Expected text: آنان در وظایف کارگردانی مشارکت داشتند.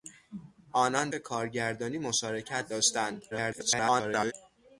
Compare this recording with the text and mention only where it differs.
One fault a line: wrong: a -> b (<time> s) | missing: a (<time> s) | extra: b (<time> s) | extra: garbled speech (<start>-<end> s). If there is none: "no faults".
missing: در وظایف (1.1 s)
extra: garbled speech (3.3-4.3 s)